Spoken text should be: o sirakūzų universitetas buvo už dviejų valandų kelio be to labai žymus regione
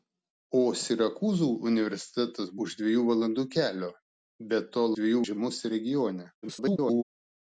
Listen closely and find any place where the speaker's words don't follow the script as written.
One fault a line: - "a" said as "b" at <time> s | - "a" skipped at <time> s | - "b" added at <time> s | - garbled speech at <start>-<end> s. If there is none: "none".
- "buvo" skipped at 2.5 s
- "labai" said as "dviejų" at 5.0 s
- garbled speech at 6.4-7.0 s